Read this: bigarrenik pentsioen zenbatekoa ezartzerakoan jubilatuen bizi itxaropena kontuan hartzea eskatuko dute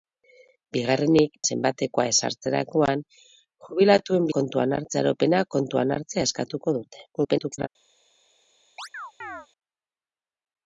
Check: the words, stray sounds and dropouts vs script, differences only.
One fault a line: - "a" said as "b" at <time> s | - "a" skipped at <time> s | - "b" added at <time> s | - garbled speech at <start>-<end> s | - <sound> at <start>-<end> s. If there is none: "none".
- "pentsioen" skipped at 1.4 s
- "bizi" said as "kontuan" at 4.4 s
- garbled speech at 7.1-7.7 s
- chirp at 8.8-9.5 s